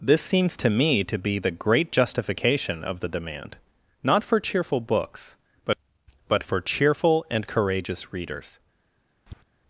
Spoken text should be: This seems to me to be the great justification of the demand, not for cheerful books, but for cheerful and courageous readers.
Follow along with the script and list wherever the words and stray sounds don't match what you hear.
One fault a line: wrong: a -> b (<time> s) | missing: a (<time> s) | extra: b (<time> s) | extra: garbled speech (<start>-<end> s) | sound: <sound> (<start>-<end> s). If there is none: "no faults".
extra: but (6.3 s)
sound: tap (9.3-9.4 s)